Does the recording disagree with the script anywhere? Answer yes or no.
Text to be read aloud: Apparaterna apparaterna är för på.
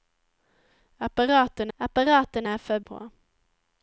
no